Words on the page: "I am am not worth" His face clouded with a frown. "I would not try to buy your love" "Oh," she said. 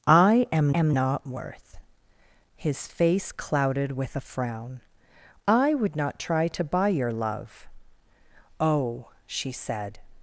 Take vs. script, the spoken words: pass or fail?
pass